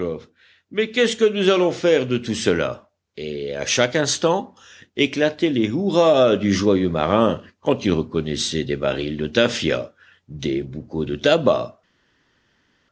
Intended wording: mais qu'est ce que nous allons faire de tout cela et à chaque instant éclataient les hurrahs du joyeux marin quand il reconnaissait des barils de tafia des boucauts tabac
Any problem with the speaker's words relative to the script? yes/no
yes